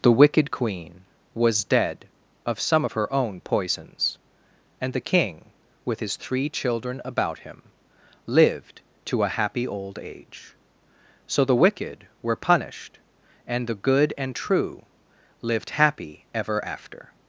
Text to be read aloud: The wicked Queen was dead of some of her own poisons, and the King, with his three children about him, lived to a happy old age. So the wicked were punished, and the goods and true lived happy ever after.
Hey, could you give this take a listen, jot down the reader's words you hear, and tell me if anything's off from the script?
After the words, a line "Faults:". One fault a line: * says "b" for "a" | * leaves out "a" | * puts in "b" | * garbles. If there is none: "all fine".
The wicked Queen was dead of some of her own poisons, and the King, with his three children about him, lived to a happy old age. So the wicked were punished, and the good and true lived happy ever after.
Faults:
* says "good" for "goods"